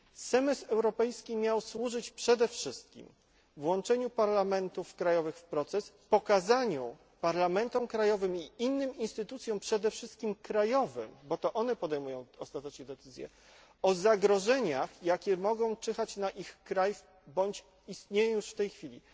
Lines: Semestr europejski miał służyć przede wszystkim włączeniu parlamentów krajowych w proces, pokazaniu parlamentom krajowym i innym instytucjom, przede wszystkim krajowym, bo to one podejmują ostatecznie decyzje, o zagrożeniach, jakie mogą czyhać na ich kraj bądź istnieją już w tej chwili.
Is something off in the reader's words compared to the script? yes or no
no